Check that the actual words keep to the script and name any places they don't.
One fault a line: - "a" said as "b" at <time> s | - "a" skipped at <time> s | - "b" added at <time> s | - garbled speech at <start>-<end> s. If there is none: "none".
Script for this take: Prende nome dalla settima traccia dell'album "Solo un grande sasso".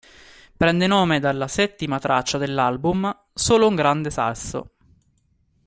none